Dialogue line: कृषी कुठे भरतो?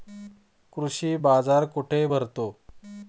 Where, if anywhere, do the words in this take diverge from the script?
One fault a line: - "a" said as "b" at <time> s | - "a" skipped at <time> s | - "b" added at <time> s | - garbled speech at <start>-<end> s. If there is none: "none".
- "बाजार" added at 1.2 s